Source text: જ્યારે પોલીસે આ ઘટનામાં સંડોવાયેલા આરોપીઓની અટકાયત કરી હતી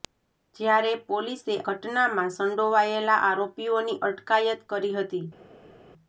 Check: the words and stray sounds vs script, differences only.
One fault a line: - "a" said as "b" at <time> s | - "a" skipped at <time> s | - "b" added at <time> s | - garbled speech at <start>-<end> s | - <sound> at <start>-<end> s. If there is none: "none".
- "આ" skipped at 1.6 s